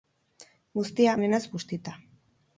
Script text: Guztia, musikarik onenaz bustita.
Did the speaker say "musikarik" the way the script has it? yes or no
no